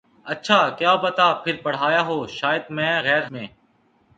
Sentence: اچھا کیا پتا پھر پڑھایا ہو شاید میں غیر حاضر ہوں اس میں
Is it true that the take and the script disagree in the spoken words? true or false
true